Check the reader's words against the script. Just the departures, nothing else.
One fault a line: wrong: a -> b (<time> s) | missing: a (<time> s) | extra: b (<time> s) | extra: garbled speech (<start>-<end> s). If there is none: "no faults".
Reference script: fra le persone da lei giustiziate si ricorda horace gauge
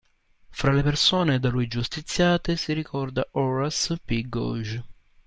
wrong: lei -> lui (1.5 s)
extra: p (4.0 s)